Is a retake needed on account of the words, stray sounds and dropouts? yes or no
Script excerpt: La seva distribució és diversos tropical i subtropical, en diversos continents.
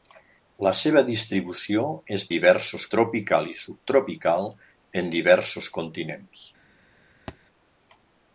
yes